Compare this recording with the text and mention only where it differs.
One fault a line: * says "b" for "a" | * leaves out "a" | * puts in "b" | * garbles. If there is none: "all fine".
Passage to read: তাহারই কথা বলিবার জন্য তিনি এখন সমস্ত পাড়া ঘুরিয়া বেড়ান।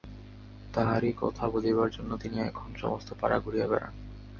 all fine